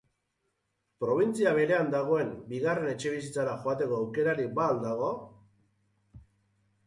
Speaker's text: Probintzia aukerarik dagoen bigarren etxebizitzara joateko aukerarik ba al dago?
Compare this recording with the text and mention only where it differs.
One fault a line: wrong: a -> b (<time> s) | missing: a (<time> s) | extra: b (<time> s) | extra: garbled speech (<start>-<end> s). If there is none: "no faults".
wrong: aukerarik -> berean (1.6 s)